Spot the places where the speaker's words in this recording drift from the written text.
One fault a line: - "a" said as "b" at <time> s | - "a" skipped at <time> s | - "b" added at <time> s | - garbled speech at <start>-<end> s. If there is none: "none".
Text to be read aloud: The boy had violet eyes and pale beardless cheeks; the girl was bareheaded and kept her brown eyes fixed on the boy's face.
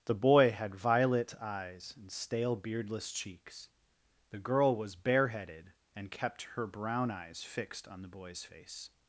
- "pale" said as "stale" at 2.1 s